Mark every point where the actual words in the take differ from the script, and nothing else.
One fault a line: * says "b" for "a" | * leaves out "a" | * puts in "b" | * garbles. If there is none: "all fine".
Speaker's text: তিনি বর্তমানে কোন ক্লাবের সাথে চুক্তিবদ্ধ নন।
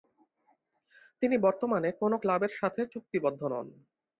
all fine